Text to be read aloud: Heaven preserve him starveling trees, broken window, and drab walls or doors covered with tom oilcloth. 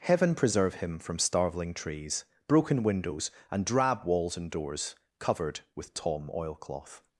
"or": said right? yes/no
no